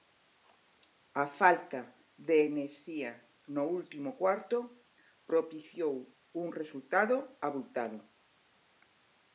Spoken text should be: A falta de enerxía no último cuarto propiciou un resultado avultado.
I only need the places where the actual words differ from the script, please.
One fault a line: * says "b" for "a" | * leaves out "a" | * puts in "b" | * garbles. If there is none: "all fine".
all fine